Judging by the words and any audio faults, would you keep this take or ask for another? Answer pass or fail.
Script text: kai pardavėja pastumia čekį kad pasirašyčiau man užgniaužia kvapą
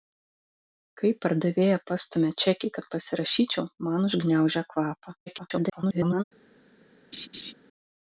fail